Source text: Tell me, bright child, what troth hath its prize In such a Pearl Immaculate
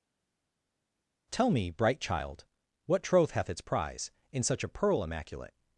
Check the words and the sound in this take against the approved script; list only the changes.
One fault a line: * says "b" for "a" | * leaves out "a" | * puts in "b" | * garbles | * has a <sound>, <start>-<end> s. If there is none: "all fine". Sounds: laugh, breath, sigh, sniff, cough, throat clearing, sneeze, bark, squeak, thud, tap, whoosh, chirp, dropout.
all fine